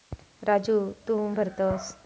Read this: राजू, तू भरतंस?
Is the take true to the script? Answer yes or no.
yes